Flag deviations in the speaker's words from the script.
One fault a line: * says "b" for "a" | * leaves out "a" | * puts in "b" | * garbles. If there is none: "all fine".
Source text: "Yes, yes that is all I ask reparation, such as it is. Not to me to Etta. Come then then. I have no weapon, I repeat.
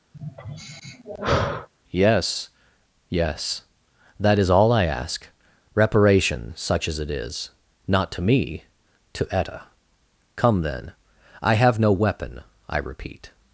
* leaves out "then"